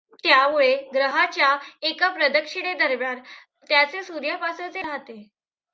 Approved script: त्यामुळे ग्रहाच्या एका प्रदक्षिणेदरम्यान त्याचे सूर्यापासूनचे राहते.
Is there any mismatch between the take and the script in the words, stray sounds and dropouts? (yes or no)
no